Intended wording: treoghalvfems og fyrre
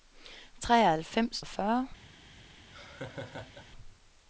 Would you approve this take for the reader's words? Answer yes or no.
yes